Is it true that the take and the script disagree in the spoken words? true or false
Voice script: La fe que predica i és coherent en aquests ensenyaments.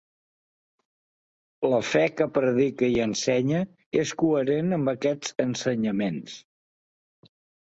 true